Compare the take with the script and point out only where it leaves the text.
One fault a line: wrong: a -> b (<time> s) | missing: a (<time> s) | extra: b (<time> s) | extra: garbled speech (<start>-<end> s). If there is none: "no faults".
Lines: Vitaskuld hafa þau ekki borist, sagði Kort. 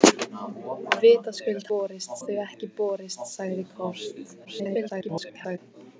wrong: hafa -> borist (1.7 s)
extra: garbled speech (4.4-5.6 s)